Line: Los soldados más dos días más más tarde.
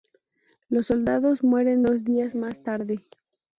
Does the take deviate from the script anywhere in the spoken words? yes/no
yes